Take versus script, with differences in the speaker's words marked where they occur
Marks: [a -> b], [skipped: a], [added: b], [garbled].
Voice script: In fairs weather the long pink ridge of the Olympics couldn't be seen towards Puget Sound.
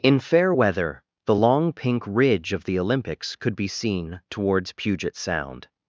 In [fairs -> fair] weather the long pink ridge of the Olympics [couldn't -> could] be seen towards Puget Sound.